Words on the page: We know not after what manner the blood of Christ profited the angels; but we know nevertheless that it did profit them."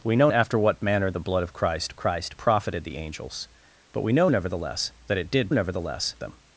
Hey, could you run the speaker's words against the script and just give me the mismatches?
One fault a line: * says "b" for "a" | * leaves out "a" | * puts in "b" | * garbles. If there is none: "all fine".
* leaves out "not"
* puts in "Christ"
* says "nevertheless" for "profit"